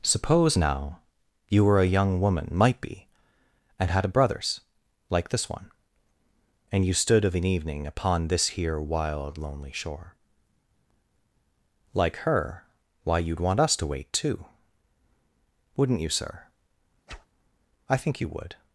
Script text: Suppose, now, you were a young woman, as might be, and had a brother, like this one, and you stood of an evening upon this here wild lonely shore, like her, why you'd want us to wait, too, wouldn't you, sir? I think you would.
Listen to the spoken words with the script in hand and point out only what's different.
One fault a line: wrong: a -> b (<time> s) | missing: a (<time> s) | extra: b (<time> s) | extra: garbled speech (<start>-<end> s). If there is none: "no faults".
missing: as (2.5 s)
wrong: brother -> brothers (4.1 s)